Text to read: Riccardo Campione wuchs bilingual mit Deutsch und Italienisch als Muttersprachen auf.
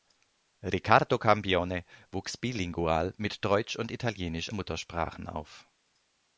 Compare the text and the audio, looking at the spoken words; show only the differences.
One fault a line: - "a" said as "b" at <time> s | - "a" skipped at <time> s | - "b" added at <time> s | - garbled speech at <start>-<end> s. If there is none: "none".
- "als" skipped at 4.5 s